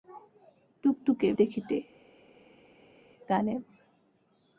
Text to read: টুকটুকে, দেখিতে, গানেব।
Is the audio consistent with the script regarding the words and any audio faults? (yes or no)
yes